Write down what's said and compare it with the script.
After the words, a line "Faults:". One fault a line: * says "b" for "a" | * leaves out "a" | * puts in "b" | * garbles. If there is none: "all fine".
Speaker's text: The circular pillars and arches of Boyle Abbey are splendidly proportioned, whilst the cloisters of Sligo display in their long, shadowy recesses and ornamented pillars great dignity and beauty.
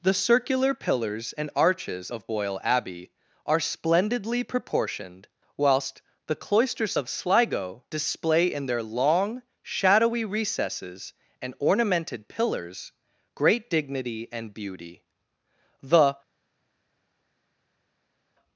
The circular pillars and arches of Boyle Abbey are splendidly proportioned, whilst the cloisters of Sligo display in their long, shadowy recesses and ornamented pillars great dignity and beauty. The
Faults:
* puts in "The"